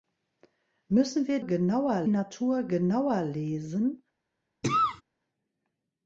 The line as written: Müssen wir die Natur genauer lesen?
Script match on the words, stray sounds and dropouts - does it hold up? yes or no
no